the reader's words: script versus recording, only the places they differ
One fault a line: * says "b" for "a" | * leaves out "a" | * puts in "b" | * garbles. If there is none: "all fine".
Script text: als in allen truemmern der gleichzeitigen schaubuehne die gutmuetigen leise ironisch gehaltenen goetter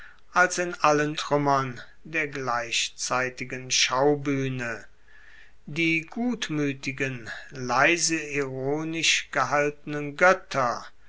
all fine